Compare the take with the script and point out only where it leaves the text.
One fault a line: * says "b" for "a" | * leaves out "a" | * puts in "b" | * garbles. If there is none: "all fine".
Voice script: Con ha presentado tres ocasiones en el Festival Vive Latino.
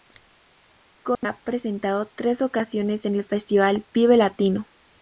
all fine